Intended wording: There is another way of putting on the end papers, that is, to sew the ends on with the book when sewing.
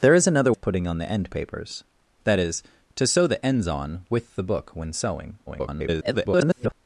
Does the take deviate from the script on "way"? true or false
true